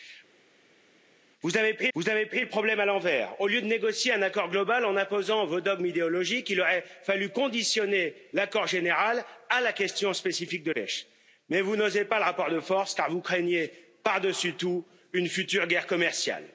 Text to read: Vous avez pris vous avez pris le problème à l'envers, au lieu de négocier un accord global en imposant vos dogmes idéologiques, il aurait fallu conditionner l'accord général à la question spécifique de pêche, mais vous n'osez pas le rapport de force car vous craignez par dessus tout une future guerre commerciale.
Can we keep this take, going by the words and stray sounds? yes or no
yes